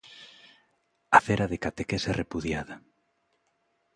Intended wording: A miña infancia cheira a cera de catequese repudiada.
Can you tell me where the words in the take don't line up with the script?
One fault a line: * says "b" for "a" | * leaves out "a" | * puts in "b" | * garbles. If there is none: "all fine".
* leaves out "miña infancia cheira"